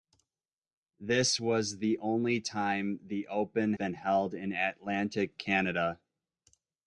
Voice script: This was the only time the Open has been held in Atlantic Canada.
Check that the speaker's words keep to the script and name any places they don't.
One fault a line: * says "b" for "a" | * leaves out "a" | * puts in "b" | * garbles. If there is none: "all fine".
* leaves out "has"